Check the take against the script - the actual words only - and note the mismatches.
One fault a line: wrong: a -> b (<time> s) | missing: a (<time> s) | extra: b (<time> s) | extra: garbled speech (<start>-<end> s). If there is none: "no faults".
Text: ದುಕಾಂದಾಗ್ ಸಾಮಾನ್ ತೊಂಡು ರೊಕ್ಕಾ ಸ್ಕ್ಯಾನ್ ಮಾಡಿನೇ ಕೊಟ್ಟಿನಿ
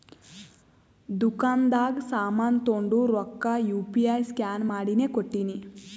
extra: ಯು ಪಿ ಐ (3.7 s)